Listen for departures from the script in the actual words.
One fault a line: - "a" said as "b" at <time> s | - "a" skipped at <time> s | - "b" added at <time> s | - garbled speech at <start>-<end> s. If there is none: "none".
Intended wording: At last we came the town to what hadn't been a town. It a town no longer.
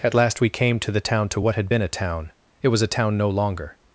- "to" added at 0.8 s
- "hadn't" said as "had" at 1.6 s
- "was" added at 2.7 s